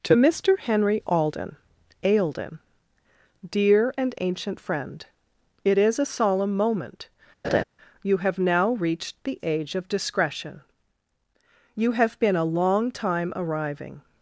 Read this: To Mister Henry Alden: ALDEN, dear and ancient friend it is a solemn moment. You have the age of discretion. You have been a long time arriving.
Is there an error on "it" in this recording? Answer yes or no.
no